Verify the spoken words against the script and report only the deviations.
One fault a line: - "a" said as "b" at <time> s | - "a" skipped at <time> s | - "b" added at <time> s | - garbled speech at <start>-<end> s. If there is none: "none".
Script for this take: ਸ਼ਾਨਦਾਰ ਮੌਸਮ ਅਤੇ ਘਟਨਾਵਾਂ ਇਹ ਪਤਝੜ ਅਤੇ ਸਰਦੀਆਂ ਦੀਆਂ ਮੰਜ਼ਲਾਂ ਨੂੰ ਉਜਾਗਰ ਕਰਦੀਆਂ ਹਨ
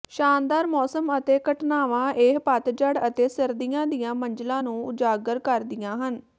none